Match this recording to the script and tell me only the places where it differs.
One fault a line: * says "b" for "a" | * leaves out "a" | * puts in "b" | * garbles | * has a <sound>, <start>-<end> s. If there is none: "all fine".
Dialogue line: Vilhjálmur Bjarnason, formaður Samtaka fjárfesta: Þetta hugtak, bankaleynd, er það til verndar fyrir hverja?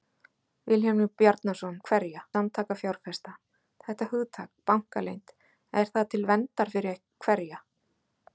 * says "hverja" for "formaður"